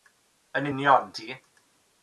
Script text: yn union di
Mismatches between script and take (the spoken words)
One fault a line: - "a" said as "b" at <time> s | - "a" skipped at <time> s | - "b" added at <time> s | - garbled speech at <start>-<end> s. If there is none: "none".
none